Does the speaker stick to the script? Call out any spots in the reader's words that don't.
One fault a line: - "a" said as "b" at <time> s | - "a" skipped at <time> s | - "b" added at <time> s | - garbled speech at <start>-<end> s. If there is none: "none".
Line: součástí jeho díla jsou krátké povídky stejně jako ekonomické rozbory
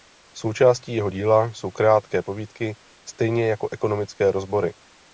none